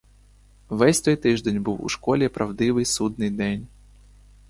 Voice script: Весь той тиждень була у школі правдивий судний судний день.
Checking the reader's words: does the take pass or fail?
fail